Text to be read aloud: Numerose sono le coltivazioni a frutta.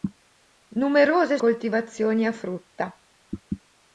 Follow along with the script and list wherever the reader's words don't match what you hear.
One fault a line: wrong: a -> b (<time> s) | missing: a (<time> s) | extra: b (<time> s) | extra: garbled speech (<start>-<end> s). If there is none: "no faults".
missing: sono le (1.4 s)